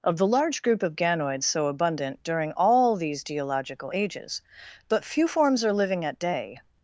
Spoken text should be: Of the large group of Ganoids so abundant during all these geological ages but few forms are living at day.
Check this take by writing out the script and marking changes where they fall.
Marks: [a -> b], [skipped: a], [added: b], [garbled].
Of the large group of Ganoids so abundant during all these geological ages but few forms are living at day.